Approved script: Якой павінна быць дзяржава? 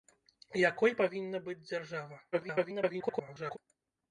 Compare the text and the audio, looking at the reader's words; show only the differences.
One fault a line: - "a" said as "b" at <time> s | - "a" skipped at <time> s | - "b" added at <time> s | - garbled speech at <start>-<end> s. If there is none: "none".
- garbled speech at 2.3-3.6 s